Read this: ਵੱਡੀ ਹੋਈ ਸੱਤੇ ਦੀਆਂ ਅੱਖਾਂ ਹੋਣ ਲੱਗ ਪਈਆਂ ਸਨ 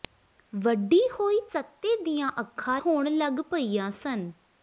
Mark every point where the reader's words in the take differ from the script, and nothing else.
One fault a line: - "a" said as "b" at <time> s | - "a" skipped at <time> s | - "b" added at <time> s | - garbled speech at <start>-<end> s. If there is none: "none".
none